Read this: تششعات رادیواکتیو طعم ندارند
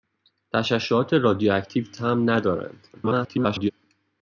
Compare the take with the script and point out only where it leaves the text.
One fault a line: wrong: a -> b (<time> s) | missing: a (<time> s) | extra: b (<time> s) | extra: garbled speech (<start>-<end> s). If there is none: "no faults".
extra: garbled speech (2.9-3.7 s)